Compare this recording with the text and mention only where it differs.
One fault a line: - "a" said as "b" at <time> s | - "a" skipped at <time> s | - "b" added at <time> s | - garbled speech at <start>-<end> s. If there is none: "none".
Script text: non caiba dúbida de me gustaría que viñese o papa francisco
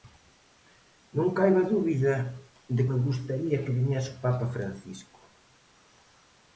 none